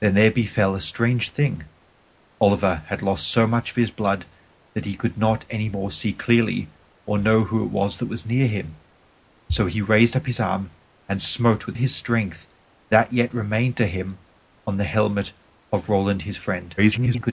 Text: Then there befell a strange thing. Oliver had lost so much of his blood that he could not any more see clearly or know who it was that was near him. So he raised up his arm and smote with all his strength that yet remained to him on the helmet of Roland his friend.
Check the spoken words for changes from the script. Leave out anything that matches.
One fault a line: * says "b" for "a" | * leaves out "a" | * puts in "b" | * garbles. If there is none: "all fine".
* leaves out "all"
* garbles